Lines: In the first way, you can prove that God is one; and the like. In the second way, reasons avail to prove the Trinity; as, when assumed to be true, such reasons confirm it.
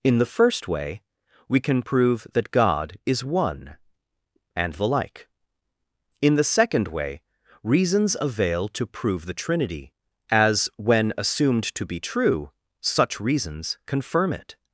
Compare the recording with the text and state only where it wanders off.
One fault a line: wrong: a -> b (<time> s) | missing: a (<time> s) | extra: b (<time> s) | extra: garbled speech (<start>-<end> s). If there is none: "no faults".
wrong: you -> we (1.5 s)